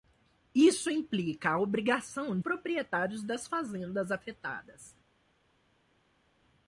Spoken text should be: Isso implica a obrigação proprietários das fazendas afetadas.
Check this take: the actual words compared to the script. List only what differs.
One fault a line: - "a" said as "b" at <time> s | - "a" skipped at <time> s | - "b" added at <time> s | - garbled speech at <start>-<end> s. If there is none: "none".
none